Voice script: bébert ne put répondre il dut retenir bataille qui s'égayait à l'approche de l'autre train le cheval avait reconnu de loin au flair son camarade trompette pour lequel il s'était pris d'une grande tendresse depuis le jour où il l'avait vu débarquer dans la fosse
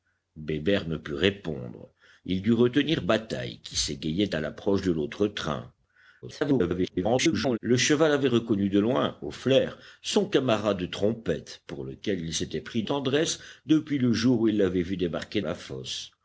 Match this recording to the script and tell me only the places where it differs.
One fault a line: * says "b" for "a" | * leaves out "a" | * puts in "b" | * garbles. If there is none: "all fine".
* garbles
* leaves out "d'une grande"
* leaves out "dans"